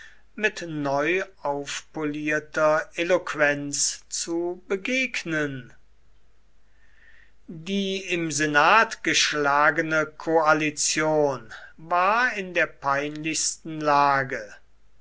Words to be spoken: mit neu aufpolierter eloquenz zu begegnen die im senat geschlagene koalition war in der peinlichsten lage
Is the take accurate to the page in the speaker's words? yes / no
yes